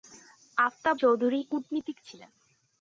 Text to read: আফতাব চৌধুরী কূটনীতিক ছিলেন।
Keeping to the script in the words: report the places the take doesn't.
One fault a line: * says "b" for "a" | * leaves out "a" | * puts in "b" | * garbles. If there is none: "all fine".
all fine